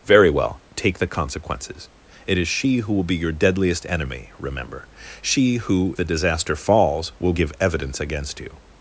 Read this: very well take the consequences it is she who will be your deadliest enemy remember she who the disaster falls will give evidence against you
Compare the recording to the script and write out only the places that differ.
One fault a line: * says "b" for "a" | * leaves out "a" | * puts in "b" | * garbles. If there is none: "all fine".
all fine